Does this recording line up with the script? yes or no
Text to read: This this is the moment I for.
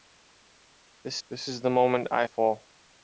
yes